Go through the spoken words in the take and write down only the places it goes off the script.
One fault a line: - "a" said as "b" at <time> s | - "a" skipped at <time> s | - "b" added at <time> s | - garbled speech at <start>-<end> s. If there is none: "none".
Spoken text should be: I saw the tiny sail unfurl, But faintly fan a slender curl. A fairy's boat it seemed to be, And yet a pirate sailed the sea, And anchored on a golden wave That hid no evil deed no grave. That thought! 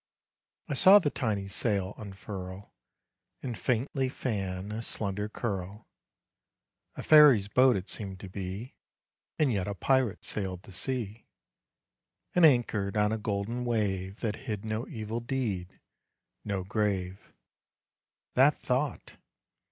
- "But" said as "And" at 3.4 s